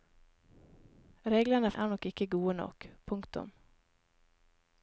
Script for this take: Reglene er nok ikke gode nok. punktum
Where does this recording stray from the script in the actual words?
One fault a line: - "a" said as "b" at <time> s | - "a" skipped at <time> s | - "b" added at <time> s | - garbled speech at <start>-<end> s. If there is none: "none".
none